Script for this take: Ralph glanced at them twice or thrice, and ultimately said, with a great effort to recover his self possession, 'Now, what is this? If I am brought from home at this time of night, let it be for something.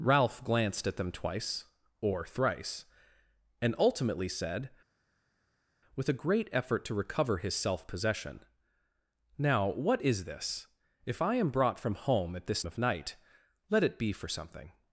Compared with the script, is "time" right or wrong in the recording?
wrong